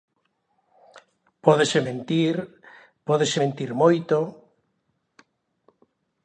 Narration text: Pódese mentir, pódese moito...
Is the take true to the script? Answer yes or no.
no